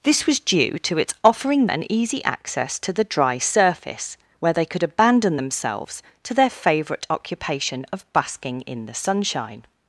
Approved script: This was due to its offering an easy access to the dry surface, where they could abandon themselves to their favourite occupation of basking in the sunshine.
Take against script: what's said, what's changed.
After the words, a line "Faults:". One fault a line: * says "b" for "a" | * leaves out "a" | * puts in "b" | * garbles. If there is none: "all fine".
This was due to its offering an easy access to the dry surface, where they could abandon themselves to their favourite occupation of basking in the sunshine.
Faults:
all fine